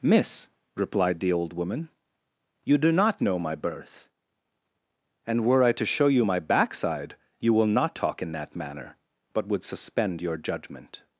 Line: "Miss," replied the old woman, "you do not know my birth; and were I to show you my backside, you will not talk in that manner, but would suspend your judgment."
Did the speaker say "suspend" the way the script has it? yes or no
yes